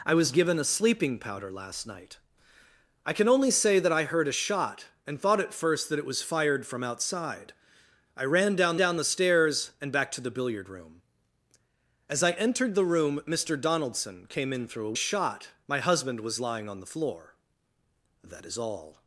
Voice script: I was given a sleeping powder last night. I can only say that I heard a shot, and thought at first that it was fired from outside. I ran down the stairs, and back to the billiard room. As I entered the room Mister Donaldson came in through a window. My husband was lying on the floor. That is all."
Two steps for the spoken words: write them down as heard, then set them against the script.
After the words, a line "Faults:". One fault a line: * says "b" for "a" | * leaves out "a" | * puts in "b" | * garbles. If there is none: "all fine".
I was given a sleeping powder last night. I can only say that I heard a shot, and thought at first that it was fired from outside. I ran down down the stairs, and back to the billiard room. As I entered the room Mister Donaldson came in through a shot. My husband was lying on the floor. That is all."
Faults:
* puts in "down"
* says "shot" for "window"